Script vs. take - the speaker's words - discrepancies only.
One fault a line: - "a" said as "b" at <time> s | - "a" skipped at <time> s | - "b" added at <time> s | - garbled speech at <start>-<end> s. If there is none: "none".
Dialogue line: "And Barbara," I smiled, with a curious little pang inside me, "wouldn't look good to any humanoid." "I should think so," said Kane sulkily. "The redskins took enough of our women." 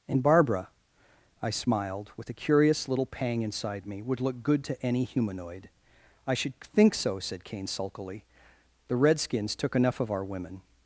- "wouldn't" said as "would" at 4.0 s